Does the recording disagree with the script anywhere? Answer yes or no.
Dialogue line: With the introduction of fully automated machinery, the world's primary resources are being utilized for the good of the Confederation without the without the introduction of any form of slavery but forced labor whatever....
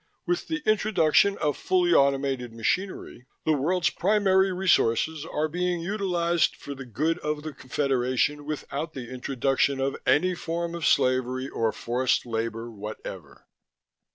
yes